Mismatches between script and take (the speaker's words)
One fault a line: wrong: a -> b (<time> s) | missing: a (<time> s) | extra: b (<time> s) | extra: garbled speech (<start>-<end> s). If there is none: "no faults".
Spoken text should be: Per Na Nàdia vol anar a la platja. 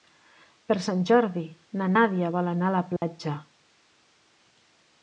extra: Sant Jordi (0.8 s)